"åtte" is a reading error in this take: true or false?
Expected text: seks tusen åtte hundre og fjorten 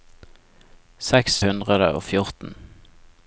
true